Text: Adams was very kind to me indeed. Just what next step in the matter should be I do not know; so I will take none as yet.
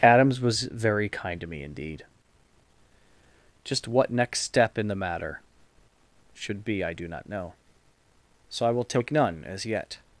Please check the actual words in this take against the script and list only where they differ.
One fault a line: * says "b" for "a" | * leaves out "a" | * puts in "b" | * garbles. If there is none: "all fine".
all fine